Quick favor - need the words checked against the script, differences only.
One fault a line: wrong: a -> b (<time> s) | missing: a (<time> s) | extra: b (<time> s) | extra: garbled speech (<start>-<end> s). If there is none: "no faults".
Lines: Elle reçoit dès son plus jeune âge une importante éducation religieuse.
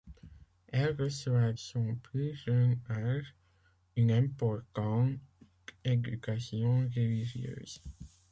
missing: dès (1.5 s)